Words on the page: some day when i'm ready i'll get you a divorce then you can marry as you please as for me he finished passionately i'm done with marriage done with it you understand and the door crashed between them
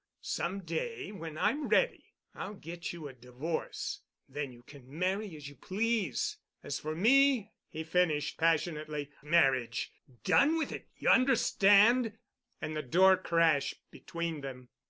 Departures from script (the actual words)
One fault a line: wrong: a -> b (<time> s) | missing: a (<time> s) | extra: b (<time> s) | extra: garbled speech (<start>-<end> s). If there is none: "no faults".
missing: i'm done with (9.1 s)